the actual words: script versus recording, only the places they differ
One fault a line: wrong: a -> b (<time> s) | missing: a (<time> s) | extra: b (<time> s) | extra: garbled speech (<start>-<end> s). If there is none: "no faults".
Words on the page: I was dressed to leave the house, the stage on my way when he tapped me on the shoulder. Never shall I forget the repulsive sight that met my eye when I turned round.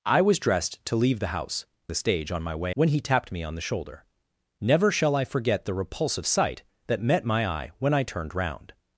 no faults